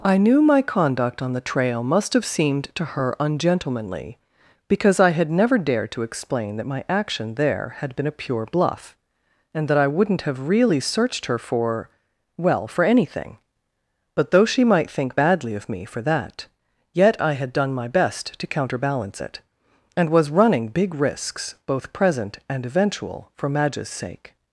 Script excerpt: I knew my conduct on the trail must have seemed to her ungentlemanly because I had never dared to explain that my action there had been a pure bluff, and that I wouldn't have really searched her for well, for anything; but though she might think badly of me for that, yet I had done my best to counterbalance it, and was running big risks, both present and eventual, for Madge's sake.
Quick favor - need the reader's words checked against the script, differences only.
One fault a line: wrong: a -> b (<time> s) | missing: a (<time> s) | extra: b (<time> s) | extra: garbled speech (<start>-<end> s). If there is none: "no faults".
no faults